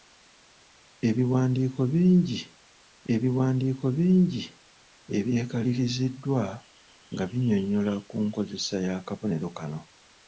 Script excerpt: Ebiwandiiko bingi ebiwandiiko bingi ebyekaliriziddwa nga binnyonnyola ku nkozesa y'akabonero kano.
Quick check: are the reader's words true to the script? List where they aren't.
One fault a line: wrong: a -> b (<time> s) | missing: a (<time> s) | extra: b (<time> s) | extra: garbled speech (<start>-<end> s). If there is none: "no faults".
no faults